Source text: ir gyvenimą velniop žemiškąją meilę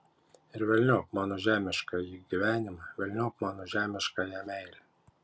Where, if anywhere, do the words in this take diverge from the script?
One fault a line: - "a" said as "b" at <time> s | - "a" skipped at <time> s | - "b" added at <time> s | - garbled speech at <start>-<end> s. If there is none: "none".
- "velniop mano žemiškąjį" added at 0.7 s
- "mano" added at 3.5 s